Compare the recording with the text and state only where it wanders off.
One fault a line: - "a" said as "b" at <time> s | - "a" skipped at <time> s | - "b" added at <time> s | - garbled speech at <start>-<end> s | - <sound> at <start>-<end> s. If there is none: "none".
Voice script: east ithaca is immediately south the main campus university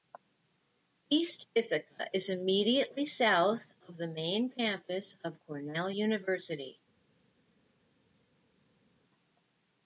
- "of" added at 3.9 s
- "of cornell" added at 5.2 s